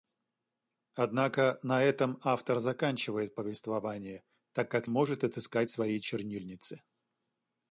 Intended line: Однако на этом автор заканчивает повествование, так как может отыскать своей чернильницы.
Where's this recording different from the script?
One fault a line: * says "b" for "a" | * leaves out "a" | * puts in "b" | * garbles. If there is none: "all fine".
all fine